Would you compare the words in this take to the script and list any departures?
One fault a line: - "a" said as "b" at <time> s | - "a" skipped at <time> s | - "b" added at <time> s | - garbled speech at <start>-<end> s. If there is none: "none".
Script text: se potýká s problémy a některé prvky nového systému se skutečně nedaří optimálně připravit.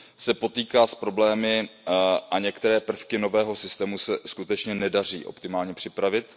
none